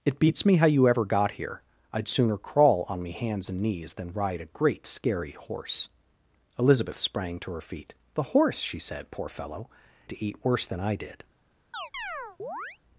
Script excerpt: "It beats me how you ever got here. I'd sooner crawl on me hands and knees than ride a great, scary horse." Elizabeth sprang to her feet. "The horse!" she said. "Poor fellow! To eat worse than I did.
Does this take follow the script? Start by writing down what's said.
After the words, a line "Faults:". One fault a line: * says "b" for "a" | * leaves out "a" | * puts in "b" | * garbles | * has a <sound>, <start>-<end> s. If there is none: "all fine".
"It beats me how you ever got here. I'd sooner crawl on me hands and knees than ride a great, scary horse." Elizabeth sprang to her feet. "The horse!" she said. "Poor fellow! To eat worse than I did.
Faults:
* has a chirp, 11.7-12.8 s